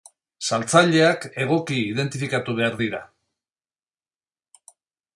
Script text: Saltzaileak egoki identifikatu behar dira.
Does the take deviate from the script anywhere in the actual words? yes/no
no